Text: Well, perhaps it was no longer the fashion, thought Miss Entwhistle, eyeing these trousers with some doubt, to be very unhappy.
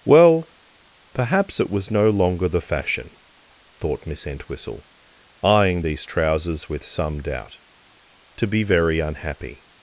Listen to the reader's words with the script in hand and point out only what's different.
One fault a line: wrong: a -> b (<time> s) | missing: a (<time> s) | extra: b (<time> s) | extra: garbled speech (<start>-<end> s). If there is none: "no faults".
no faults